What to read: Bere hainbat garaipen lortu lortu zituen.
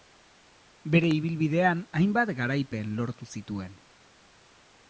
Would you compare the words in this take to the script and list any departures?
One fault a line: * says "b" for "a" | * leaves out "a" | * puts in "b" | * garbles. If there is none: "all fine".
* puts in "ibilbidean"
* leaves out "lortu"